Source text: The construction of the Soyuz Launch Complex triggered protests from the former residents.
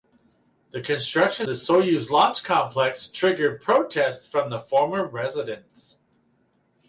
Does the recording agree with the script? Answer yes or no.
no